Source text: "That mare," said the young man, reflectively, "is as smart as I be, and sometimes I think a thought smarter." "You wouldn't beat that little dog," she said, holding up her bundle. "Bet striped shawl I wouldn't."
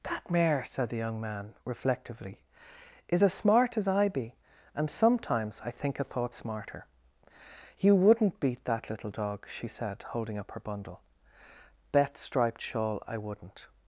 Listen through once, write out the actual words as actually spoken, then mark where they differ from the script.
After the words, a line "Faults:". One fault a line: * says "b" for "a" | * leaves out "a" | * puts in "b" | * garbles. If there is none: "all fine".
"That mare," said the young man, reflectively, "is as smart as I be, and sometimes I think a thought smarter." "You wouldn't beat that little dog," she said, holding up her bundle. "Bet striped shawl I wouldn't."
Faults:
all fine